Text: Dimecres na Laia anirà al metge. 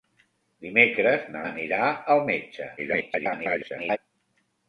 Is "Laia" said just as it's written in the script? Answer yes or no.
no